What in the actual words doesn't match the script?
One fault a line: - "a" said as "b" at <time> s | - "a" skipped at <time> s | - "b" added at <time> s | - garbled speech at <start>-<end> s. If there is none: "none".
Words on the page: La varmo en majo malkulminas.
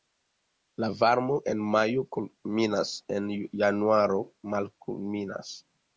- "kulminas en januaro" added at 2.2 s